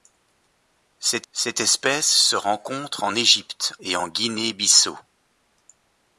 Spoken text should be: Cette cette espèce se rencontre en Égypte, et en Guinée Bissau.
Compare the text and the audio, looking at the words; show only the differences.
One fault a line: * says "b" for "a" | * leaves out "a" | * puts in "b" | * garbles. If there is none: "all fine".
all fine